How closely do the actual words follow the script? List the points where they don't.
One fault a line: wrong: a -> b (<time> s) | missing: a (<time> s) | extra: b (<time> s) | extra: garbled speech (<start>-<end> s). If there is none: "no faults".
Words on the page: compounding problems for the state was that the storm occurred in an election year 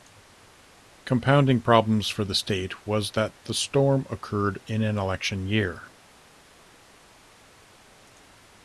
no faults